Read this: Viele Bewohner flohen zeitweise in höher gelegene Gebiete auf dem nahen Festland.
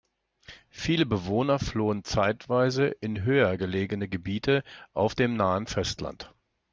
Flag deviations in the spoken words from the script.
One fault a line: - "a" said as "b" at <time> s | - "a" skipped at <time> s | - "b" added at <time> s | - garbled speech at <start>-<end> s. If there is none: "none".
none